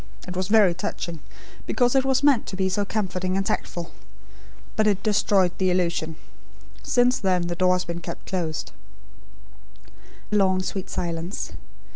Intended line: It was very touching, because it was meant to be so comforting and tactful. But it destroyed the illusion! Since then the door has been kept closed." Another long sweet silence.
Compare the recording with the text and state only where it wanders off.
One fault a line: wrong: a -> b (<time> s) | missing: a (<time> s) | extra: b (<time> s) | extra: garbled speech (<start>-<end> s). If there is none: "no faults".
missing: Another (8.7 s)